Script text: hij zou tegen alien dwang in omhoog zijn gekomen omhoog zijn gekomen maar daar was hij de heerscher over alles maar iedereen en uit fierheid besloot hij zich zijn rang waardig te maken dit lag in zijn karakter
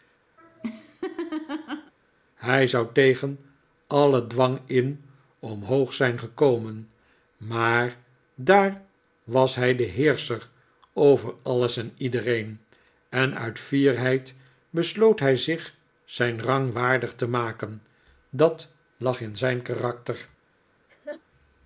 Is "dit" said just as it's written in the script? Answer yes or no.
no